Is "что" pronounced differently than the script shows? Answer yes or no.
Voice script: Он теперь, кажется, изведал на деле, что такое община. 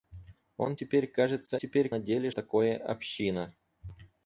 yes